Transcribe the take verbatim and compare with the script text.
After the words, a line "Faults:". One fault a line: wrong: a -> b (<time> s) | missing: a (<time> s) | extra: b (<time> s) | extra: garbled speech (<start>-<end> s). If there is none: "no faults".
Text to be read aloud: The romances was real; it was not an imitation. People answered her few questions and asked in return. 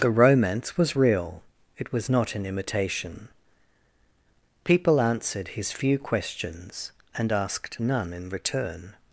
The romance was real; it was not an imitation. People answered his few questions and asked none in return.
Faults:
wrong: romances -> romance (0.1 s)
wrong: her -> his (5.5 s)
extra: none (7.8 s)